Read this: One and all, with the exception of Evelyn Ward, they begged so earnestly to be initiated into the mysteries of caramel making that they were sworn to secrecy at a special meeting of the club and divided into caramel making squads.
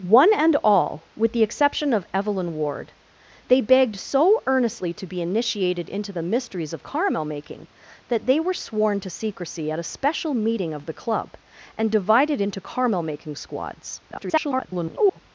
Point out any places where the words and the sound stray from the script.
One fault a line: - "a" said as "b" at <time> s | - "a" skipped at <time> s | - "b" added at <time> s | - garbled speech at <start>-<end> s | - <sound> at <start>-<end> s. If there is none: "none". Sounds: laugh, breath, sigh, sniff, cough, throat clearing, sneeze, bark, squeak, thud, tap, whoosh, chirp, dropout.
- garbled speech at 14.1-15.2 s